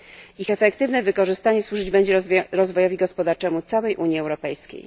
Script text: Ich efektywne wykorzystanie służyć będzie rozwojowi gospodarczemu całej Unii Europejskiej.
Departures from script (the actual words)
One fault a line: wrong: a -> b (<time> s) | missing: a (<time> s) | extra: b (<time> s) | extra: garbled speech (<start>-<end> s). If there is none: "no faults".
no faults